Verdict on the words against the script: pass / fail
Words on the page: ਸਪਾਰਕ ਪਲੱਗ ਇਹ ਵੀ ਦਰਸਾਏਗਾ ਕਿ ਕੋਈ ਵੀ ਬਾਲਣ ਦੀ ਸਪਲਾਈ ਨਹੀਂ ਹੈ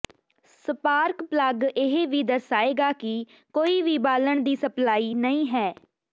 pass